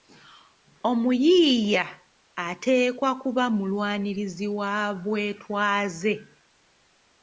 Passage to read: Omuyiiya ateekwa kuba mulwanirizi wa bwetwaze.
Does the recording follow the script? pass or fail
pass